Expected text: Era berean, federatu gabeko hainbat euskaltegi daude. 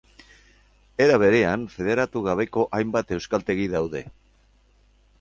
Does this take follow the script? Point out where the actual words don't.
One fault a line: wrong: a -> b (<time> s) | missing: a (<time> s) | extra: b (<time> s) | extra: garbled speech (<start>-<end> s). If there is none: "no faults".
no faults